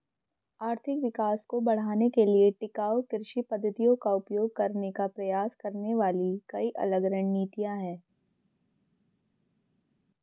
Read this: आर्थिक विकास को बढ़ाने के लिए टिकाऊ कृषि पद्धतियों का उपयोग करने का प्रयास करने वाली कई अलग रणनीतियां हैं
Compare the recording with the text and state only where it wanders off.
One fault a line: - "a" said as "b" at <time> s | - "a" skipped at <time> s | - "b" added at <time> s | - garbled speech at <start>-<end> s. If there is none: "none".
none